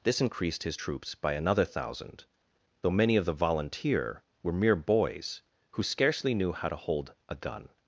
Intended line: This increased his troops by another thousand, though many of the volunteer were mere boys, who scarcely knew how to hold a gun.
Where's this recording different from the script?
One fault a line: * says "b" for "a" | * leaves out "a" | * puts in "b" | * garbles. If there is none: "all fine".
all fine